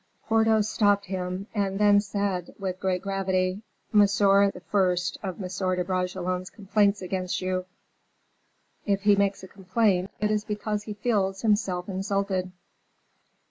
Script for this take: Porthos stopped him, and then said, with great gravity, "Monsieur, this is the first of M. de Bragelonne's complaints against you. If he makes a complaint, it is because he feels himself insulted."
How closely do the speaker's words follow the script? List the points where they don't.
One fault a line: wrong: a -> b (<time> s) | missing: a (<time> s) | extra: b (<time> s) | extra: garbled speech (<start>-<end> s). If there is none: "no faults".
missing: this is (4.5 s)